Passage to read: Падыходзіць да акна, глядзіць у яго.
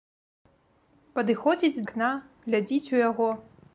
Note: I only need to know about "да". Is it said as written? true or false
false